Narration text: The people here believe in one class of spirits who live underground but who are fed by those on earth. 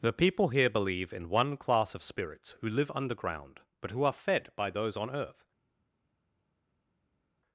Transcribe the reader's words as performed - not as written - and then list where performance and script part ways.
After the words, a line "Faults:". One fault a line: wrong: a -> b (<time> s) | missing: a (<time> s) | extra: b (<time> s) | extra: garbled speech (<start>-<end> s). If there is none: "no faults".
The people here believe in one class of spirits who live underground but who are fed by those on earth.
Faults:
no faults